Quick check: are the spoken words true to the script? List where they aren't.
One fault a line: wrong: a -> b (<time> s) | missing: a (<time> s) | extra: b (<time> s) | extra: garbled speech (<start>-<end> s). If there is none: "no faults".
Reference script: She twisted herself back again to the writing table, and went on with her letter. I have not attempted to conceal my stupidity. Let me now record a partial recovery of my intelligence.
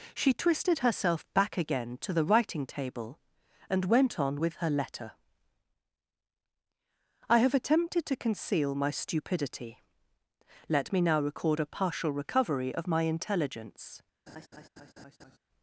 missing: not (7.5 s)